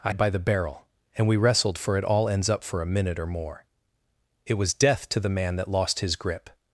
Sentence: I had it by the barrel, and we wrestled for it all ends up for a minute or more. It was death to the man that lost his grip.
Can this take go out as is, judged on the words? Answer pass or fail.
fail